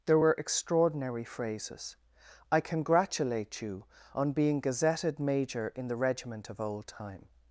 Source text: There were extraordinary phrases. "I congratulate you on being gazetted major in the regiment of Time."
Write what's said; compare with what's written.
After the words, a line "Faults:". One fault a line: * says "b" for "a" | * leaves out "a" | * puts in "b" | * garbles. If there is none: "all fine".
There were extraordinary phrases. "I congratulate you on being gazetted major in the regiment of Old Time."
Faults:
* puts in "Old"